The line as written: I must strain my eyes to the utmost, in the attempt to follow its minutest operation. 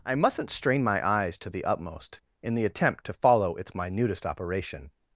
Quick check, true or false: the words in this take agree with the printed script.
false